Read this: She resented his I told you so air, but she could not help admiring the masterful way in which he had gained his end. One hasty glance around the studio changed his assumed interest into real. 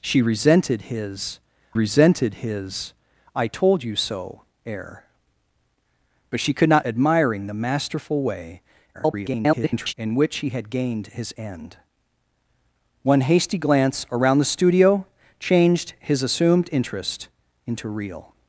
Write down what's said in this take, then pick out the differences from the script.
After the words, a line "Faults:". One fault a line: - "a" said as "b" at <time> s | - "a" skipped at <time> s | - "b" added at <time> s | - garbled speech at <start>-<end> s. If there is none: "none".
She resented his resented his I told you so air, but she could not admiring the masterful way [garbled] in which he had gained his end. One hasty glance around the studio changed his assumed interest into real.
Faults:
- "resented his" added at 1.7 s
- "help" skipped at 6.9 s
- garbled speech at 8.9-9.9 s